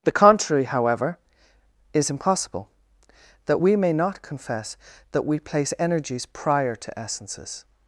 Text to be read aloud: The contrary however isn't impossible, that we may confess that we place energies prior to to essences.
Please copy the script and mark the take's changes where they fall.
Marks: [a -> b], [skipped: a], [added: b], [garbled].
The contrary however [isn't -> is] impossible, that we may [added: not] confess that we place energies prior to [skipped: to] essences.